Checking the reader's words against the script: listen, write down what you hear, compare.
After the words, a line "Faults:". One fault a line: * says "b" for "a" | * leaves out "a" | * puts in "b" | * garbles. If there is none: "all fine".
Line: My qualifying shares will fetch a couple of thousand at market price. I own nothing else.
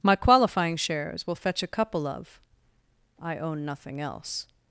My qualifying shares will fetch a couple of. I own nothing else.
Faults:
* leaves out "thousand at market price"